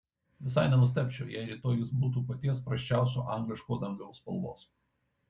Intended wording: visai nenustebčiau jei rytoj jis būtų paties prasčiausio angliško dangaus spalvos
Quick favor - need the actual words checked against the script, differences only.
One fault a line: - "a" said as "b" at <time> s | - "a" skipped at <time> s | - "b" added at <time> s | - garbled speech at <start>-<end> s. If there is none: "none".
none